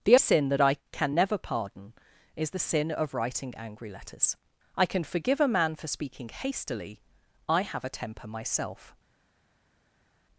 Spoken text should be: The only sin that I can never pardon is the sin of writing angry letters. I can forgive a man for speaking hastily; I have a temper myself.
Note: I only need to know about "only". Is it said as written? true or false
false